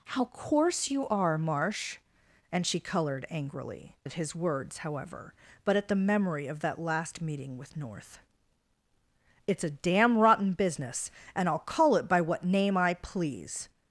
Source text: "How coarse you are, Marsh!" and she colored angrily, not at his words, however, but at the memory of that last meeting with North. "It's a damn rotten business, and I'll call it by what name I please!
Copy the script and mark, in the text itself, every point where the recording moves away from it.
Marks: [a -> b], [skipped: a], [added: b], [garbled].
"How coarse you are, Marsh!" and she colored angrily, [skipped: not] at his words, however, but at the memory of that last meeting with North. "It's a damn rotten business, and I'll call it by what name I please!